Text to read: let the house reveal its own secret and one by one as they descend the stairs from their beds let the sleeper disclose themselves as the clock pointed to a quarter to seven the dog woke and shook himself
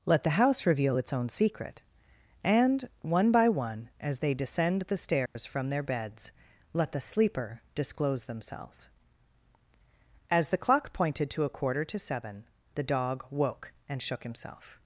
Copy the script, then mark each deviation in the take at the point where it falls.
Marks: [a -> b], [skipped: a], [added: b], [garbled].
let the house reveal its own secret and one by one as they descend the stairs from their beds let the sleeper disclose themselves as the clock pointed to a quarter to seven the dog woke and shook himself